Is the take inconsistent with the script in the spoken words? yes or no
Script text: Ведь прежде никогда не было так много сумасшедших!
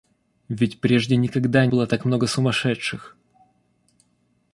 yes